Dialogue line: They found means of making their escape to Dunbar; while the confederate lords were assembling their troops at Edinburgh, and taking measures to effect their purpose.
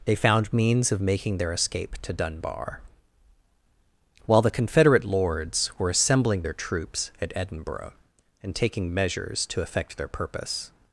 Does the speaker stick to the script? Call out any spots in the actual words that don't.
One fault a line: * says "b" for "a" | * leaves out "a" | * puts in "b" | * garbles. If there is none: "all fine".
all fine